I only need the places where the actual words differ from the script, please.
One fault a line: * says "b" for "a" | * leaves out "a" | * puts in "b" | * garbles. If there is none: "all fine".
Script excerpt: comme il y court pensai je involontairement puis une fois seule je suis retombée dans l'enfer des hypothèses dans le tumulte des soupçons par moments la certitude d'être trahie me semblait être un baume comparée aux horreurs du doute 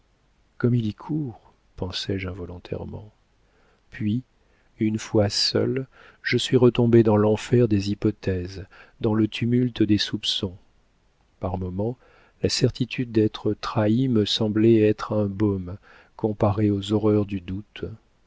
all fine